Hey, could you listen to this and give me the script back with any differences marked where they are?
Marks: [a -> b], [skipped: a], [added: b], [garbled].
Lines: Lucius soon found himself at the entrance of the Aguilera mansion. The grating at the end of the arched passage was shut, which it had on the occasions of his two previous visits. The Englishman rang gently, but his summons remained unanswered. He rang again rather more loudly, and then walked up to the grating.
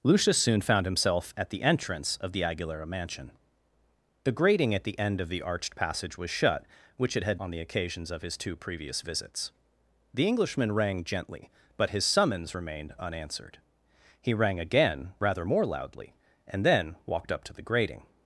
Lucius soon found himself at the entrance of the Aguilera mansion. The grating at the end of the arched passage was shut, which it had on the occasions of his two previous visits. The Englishman rang gently, but his summons remained unanswered. He rang again rather more loudly, and then walked up to the grating.